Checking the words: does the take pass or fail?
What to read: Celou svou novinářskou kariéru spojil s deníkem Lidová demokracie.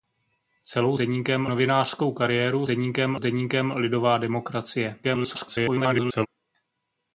fail